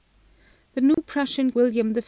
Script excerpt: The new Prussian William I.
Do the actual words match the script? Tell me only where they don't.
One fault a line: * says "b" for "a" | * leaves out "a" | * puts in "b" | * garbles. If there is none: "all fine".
all fine